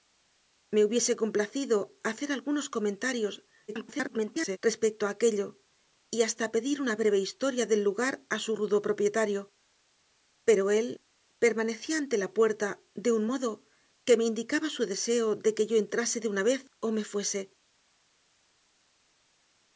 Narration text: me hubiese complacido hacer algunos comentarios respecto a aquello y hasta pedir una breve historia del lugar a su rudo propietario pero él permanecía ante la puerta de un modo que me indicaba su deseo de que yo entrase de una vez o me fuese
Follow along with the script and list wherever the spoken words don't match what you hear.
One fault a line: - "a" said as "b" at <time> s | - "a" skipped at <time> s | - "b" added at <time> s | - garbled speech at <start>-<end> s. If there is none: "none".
- garbled speech at 3.7-4.6 s